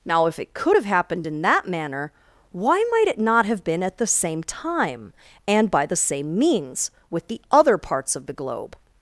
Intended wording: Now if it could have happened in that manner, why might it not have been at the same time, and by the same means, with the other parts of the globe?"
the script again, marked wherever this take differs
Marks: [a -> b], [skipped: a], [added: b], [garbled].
Now if it could have happened in that manner, why might it not have been at the same time, and by the same means, with the other parts of the globe?"